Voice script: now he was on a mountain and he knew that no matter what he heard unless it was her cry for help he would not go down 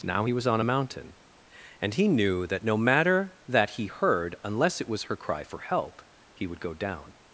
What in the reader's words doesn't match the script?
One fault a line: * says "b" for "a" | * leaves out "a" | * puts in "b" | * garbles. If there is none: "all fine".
* says "that" for "what"
* leaves out "not"